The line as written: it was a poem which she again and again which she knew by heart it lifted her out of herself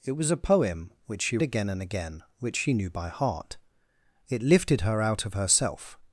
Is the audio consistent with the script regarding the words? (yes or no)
yes